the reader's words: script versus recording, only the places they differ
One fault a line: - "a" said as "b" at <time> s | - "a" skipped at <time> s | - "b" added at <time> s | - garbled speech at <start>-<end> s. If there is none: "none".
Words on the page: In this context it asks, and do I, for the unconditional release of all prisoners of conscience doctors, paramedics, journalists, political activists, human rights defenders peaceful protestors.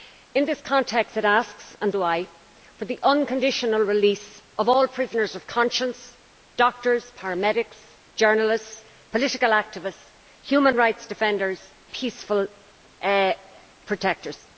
none